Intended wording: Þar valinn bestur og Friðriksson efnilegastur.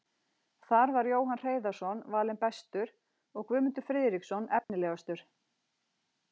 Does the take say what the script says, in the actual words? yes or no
no